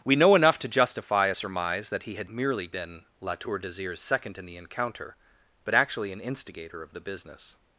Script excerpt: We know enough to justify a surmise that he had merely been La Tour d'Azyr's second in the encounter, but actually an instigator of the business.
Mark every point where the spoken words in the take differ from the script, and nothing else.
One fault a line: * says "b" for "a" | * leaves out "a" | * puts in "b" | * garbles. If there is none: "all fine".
all fine